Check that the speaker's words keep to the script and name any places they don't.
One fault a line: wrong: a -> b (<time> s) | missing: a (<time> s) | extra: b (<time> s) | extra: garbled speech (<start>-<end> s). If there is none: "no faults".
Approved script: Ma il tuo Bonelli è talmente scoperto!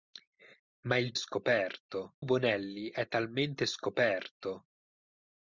wrong: tuo -> scoperto (1.1 s)